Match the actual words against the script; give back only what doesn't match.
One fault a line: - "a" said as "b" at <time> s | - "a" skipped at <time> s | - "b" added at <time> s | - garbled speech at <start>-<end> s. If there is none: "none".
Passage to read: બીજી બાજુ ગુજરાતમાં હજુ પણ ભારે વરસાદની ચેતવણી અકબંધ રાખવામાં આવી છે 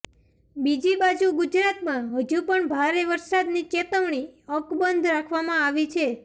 none